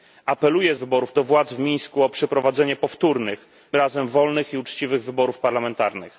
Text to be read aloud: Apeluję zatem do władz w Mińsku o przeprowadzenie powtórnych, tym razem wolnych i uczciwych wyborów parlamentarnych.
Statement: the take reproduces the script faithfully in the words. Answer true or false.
false